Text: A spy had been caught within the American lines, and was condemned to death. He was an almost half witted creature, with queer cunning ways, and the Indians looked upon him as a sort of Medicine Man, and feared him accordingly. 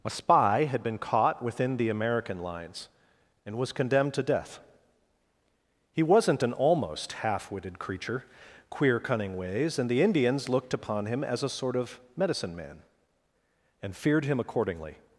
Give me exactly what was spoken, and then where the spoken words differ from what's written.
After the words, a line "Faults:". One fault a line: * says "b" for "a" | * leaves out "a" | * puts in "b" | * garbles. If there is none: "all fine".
A spy had been caught within the American lines, and was condemned to death. He wasn't an almost half witted creature, queer cunning ways, and the Indians looked upon him as a sort of Medicine Man, and feared him accordingly.
Faults:
* says "wasn't" for "was"
* leaves out "with"